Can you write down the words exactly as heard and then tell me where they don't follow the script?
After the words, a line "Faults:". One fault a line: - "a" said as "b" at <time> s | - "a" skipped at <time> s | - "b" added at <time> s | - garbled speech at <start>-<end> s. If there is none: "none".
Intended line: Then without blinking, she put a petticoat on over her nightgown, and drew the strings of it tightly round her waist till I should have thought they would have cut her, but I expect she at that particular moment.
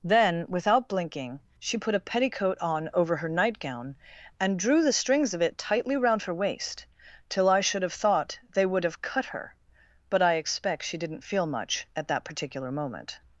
Then without blinking, she put a petticoat on over her nightgown, and drew the strings of it tightly round her waist till I should have thought they would have cut her, but I expect she didn't feel much at that particular moment.
Faults:
- "didn't feel much" added at 11.0 s